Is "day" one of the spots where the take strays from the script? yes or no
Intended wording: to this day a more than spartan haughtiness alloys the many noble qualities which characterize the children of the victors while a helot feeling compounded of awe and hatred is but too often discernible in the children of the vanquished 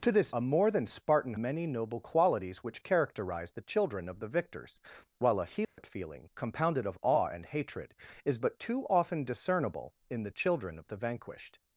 yes